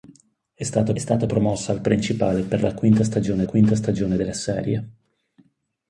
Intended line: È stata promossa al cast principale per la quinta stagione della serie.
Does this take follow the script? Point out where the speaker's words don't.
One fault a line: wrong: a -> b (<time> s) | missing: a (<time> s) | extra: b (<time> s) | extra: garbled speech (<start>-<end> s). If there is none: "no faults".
extra: stata (1.0 s)
missing: cast (1.8 s)
extra: quinta stagione (3.4 s)